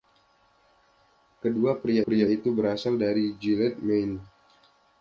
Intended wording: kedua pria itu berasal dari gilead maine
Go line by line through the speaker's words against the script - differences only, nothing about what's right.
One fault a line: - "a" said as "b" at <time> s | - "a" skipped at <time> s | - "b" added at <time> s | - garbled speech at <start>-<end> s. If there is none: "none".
- "pria" added at 2.0 s